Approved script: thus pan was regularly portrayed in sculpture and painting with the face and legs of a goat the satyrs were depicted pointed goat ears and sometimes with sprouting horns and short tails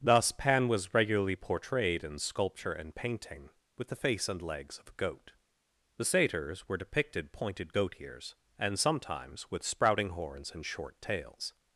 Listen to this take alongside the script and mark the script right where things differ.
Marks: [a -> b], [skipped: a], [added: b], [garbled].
thus pan was regularly portrayed in sculpture and painting with the face and legs of a goat the satyrs were depicted pointed goat ears and sometimes with sprouting horns and short tails